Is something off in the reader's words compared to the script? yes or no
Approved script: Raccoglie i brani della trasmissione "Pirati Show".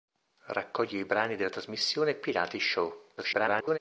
yes